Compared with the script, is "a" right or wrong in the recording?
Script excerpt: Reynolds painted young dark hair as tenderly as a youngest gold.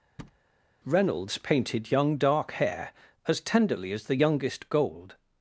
wrong